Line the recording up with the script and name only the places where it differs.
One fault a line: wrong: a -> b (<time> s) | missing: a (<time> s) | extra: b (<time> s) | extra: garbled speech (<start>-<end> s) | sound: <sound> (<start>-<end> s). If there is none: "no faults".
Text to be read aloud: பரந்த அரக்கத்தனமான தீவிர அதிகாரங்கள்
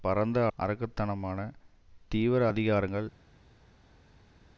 no faults